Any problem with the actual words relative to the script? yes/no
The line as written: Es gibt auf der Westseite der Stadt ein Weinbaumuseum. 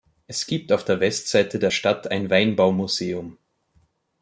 no